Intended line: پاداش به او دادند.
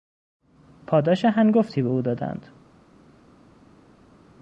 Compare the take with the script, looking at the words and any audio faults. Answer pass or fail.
fail